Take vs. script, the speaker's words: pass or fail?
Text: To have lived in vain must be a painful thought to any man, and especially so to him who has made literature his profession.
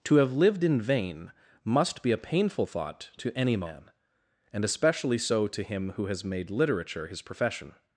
pass